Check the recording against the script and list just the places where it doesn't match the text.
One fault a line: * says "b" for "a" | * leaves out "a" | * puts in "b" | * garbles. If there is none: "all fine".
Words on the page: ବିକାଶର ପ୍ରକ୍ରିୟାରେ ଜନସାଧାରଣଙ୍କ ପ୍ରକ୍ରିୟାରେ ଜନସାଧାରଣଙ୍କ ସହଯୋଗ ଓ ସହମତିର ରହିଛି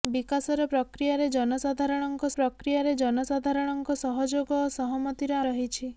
all fine